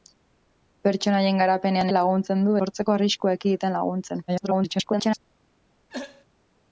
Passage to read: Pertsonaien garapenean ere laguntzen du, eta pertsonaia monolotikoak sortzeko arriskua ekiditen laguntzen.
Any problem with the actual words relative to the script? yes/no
yes